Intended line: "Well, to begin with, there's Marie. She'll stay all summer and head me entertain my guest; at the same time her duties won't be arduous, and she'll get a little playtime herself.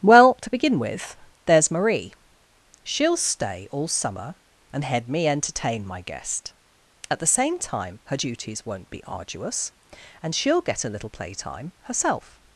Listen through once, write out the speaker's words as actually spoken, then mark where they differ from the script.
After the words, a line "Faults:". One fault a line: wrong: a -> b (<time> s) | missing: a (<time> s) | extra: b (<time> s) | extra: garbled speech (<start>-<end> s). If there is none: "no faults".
"Well, to begin with, there's Marie. She'll stay all summer and head me entertain my guest; at the same time her duties won't be arduous, and she'll get a little playtime herself.
Faults:
no faults